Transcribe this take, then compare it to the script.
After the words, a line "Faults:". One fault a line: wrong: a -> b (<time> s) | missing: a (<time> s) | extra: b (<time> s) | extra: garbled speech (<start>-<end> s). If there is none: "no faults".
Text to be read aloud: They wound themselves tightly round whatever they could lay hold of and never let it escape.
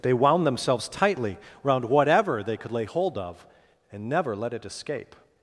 They wound themselves tightly round whatever they could lay hold of and never let it escape.
Faults:
no faults